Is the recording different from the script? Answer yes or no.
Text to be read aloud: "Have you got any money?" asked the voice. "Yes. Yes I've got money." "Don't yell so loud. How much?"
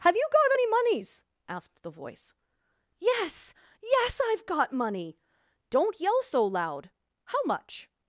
yes